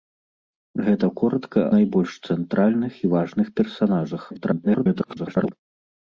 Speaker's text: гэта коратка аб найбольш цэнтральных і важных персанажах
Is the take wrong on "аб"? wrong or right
wrong